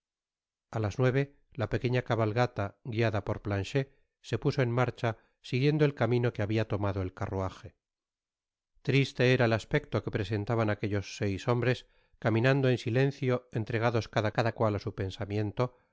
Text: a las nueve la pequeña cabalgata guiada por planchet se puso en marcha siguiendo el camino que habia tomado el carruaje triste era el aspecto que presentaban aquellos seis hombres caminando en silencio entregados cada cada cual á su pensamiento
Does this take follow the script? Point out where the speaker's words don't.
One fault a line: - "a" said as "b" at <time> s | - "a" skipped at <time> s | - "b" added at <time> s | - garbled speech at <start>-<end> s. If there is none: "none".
none